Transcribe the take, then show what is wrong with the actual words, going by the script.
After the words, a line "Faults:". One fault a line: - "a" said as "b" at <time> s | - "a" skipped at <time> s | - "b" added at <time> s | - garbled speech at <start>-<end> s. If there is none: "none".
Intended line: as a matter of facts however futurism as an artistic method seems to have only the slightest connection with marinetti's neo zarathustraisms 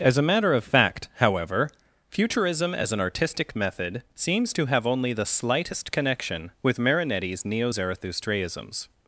as a matter of fact however futurism as an artistic method seems to have only the slightest connection with marinetti's neo zarathustraisms
Faults:
- "facts" said as "fact" at 0.6 s